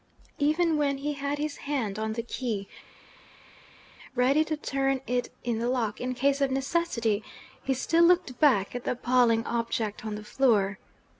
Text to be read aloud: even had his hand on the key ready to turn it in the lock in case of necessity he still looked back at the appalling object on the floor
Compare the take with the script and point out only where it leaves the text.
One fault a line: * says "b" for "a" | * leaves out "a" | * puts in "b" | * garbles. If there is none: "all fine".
* puts in "when he"